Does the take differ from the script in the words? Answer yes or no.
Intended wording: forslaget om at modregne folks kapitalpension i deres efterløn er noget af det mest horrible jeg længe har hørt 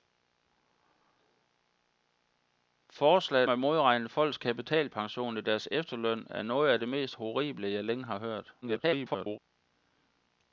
yes